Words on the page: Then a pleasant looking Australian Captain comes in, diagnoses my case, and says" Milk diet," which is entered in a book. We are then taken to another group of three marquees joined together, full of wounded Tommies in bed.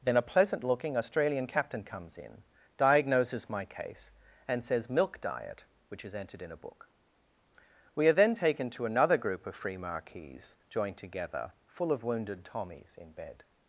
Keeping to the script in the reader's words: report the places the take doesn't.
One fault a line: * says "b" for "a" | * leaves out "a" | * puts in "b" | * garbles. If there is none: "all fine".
* says "free" for "three"